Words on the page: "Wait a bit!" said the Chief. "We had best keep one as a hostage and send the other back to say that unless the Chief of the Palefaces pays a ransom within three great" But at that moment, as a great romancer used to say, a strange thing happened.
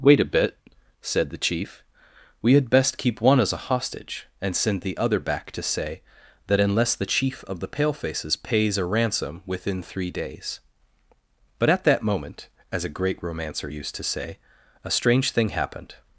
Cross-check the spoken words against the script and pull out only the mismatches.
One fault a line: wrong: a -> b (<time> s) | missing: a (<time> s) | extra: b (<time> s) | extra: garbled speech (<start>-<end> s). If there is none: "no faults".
wrong: great -> days (10.1 s)